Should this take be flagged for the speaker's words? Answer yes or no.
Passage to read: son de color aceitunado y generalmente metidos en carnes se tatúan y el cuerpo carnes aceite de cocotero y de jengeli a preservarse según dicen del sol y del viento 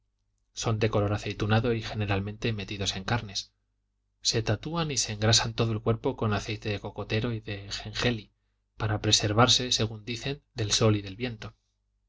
yes